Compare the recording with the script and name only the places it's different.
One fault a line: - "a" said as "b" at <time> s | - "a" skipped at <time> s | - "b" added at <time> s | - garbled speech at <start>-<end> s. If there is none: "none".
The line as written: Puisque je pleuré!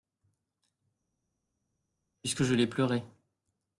- "l'ai" added at 2.5 s